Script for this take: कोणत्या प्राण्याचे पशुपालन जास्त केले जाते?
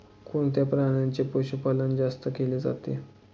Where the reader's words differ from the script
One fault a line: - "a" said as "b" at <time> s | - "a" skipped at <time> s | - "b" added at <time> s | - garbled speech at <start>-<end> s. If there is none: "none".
none